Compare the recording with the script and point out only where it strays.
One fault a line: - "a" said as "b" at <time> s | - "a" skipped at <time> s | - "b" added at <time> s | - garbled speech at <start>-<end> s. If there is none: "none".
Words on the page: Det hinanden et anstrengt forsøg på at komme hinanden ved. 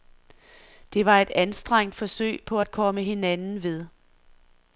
- "hinanden" said as "var" at 1.1 s